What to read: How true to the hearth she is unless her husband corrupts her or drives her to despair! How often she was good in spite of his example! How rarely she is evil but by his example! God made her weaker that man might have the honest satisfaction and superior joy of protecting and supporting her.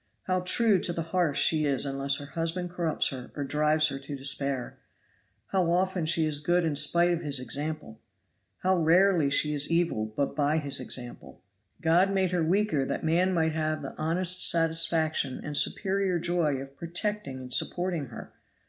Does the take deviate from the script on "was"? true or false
true